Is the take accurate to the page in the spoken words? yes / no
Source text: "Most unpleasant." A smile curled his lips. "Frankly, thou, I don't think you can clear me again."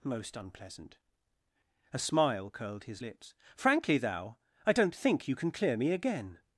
yes